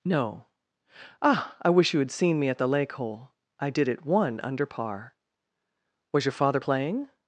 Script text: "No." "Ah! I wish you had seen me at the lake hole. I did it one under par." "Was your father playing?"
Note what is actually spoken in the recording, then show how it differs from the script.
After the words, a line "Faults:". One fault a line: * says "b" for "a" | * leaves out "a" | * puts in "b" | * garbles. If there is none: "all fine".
"No." "Ah! I wish you had seen me at the lake hole. I did it one under par." "Was your father playing?"
Faults:
all fine